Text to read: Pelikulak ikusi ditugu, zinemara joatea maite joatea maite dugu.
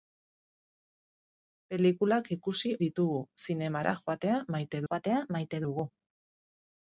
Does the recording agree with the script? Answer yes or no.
yes